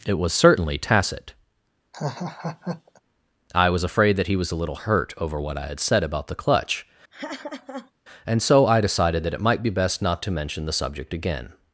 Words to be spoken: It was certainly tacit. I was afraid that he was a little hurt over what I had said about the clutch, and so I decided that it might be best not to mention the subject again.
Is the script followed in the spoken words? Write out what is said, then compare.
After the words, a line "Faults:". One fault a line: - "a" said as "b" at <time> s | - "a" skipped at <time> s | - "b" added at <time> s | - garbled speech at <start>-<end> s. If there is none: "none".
It was certainly tacit. I was afraid that he was a little hurt over what I had said about the clutch, and so I decided that it might be best not to mention the subject again.
Faults:
none